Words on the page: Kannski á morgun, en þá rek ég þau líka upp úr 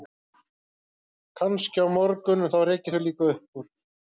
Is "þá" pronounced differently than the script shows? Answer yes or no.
no